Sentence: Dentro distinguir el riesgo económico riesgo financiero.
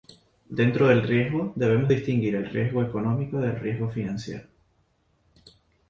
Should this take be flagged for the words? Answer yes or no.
yes